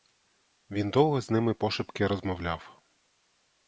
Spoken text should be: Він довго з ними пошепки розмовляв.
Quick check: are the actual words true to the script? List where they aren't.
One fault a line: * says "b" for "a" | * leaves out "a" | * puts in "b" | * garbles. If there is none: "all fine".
all fine